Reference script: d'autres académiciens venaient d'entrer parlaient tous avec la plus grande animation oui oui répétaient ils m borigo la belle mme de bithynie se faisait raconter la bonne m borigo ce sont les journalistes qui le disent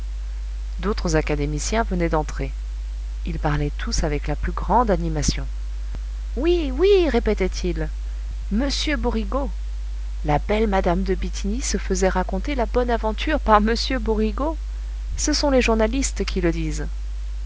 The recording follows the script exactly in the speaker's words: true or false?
false